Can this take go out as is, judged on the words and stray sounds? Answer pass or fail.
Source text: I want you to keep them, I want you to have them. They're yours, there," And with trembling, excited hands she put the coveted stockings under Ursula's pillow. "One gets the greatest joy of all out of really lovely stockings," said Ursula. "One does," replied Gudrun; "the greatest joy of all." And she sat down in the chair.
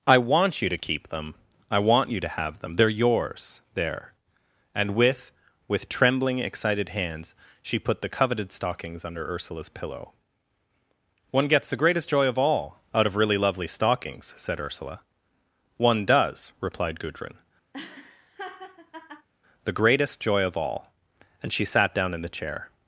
fail